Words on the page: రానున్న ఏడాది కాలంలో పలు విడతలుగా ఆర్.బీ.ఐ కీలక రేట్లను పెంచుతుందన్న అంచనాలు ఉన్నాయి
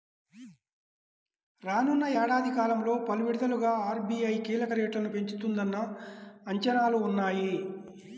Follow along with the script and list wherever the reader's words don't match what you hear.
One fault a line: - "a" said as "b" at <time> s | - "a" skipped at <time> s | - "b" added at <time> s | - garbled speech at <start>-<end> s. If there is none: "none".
none